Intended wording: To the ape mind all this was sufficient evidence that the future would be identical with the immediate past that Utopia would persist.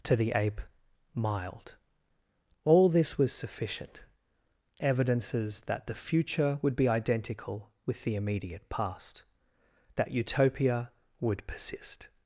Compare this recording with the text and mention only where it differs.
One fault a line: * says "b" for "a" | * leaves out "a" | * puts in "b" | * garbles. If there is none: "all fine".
* says "mild" for "mind"
* says "evidences" for "evidence"